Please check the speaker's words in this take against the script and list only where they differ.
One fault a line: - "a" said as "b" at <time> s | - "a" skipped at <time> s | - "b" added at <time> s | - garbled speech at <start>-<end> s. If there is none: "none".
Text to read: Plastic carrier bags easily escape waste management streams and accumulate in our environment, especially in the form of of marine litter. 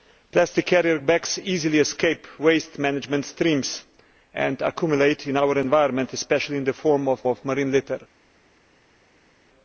none